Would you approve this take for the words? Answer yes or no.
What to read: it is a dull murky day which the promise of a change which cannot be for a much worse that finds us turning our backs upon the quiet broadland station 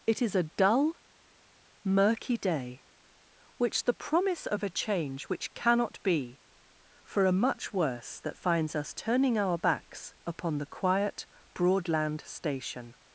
yes